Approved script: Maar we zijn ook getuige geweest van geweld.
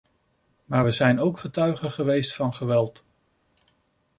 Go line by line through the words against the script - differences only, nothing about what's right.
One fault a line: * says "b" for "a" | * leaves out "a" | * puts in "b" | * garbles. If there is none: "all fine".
all fine